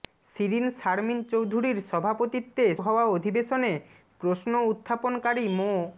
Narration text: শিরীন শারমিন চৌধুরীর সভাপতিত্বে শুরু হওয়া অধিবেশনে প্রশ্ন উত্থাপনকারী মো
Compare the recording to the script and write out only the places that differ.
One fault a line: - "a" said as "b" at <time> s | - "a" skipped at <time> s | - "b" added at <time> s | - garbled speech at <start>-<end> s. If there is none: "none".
- "শুরু" skipped at 2.6 s